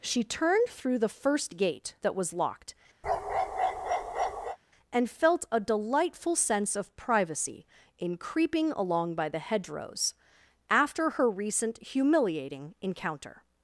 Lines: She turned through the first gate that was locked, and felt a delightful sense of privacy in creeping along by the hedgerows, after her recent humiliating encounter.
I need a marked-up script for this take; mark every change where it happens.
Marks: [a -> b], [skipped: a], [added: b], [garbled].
She turned through the first gate that was locked, and felt a delightful sense of privacy in creeping along by the hedgerows, after her recent humiliating encounter.